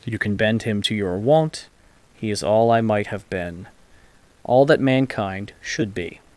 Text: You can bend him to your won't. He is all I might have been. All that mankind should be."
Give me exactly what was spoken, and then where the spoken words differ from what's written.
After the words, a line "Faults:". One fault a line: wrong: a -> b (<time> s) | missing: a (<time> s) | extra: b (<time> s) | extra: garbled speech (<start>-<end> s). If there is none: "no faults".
You can bend him to your won't. He is all I might have been. All that mankind should be."
Faults:
no faults